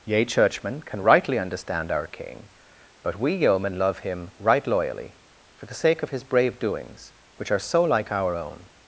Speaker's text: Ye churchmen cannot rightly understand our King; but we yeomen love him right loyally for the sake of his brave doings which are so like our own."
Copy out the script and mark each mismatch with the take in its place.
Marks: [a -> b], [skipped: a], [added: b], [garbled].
Ye churchmen [cannot -> can] rightly understand our King; but we yeomen love him right loyally for the sake of his brave doings which are so like our own."